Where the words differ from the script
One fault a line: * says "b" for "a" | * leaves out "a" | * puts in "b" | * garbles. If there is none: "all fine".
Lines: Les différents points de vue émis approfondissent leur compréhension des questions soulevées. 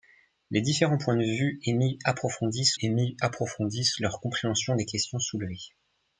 * puts in "émis approfondissent"